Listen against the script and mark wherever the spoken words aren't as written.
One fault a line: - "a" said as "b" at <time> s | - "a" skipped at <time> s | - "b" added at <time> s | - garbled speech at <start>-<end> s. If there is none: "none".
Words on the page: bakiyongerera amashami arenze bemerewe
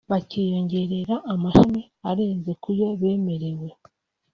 - "kuyo" added at 2.6 s